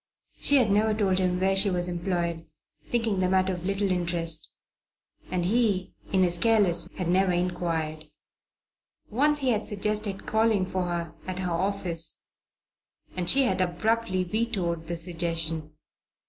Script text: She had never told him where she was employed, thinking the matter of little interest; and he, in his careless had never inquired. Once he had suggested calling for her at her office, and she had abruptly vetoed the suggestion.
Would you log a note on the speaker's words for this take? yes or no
no